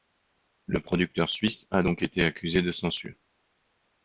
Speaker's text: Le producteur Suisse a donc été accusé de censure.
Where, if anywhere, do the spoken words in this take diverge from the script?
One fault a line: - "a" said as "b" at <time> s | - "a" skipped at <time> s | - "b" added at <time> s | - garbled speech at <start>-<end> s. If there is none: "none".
none